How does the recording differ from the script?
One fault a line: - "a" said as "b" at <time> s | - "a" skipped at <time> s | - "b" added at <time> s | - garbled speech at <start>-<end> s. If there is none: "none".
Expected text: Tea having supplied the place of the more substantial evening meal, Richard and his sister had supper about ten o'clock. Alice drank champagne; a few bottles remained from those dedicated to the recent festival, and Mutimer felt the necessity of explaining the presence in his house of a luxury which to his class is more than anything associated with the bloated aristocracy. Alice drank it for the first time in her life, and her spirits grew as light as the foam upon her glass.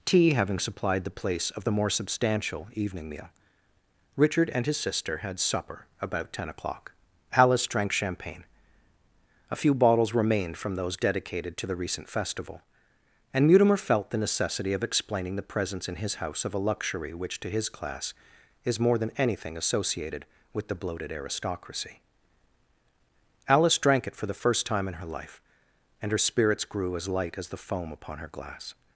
none